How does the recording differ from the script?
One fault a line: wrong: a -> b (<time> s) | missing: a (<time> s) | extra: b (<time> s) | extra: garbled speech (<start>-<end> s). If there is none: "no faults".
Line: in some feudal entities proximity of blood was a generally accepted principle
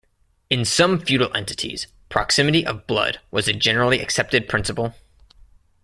no faults